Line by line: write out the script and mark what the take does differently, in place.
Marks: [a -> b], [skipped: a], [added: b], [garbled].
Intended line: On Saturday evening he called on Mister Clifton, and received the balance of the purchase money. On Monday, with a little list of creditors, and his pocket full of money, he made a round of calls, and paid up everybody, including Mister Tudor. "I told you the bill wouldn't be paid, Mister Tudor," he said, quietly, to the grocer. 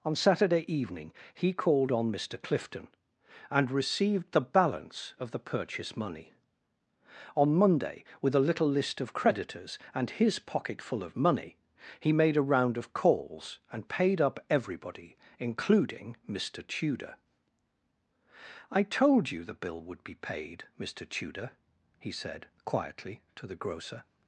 On Saturday evening he called on Mister Clifton, and received the balance of the purchase money. On Monday, with a little list of creditors, and his pocket full of money, he made a round of calls, and paid up everybody, including Mister Tudor. "I told you the bill [wouldn't -> would] be paid, Mister Tudor," he said, quietly, to the grocer.